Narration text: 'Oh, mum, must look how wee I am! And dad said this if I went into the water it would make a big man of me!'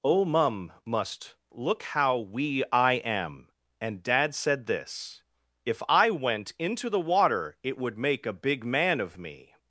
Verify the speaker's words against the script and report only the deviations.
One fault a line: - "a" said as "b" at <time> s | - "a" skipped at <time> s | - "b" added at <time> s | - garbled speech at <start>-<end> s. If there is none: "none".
none